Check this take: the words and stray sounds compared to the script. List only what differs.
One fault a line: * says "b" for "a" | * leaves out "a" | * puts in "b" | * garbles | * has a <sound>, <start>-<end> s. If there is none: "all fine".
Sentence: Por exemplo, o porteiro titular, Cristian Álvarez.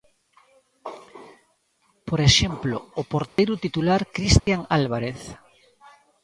* has a dropout, 3.3-3.4 s
* has a dropout, 4.4-4.5 s